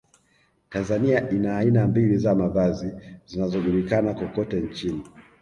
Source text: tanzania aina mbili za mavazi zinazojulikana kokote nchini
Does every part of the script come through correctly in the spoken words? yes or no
no